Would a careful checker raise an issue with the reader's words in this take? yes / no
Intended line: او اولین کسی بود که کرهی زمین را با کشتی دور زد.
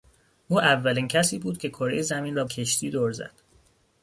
yes